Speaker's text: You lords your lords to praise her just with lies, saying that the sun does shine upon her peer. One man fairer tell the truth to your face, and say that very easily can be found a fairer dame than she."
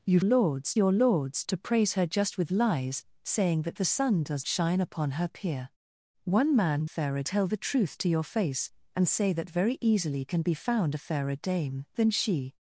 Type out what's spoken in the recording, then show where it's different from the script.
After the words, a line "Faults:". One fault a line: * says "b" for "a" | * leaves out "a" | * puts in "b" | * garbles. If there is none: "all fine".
You lords your lords to praise her just with lies, saying that the sun does shine upon her peer. One man fairer tell the truth to your face, and say that very easily can be found a fairer dame than she."
Faults:
all fine